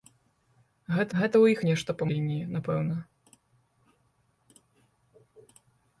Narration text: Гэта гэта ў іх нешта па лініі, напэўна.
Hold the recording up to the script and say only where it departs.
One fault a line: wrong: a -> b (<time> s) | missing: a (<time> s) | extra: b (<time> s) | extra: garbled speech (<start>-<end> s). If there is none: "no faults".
no faults